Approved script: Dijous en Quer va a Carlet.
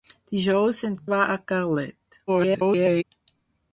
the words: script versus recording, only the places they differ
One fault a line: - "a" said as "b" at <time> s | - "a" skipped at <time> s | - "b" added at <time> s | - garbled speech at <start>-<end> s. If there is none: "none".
- "Quer" skipped at 0.9 s
- garbled speech at 2.3-3.0 s